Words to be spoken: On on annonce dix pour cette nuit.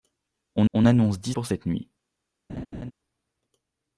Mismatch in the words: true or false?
false